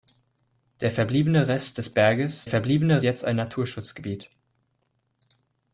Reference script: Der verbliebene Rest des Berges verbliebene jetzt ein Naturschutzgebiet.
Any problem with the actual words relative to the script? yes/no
no